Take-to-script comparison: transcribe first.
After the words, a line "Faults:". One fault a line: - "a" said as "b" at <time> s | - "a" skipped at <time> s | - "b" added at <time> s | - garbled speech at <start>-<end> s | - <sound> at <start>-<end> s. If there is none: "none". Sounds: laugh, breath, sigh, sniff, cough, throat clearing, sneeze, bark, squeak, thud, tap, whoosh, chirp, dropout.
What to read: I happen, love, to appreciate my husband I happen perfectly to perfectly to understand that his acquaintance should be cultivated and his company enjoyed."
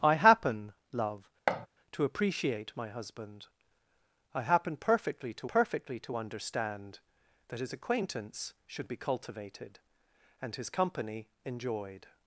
I happen, love, to appreciate my husband I happen perfectly to perfectly to understand that his acquaintance should be cultivated and his company enjoyed."
Faults:
- thud at 1.5-1.7 s